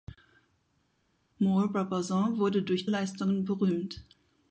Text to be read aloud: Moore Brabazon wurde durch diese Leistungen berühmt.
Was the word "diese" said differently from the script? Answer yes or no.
yes